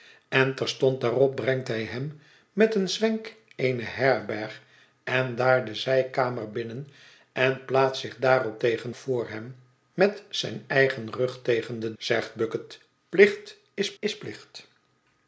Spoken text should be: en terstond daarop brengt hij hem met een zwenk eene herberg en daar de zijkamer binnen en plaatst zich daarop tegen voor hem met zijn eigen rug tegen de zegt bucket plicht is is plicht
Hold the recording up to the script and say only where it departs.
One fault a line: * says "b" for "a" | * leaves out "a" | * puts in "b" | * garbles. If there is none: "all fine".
all fine